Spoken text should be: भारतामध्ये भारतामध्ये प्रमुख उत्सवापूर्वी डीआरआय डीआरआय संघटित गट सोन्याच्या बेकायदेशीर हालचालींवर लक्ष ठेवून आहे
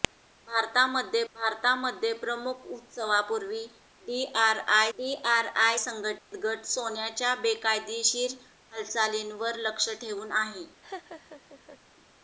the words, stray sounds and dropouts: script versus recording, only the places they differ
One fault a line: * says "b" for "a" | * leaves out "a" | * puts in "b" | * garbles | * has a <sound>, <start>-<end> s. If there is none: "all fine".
* has a dropout, 6.2-6.3 s
* has a laugh, 10.8-11.8 s